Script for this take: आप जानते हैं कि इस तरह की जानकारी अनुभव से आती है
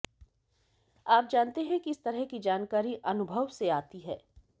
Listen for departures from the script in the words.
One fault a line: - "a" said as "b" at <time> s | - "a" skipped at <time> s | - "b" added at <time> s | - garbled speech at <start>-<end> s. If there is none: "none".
none